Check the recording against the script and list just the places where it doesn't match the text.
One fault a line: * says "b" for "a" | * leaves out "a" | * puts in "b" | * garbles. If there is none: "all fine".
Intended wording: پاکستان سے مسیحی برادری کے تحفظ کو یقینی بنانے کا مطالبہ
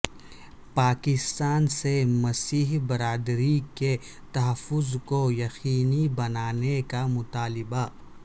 all fine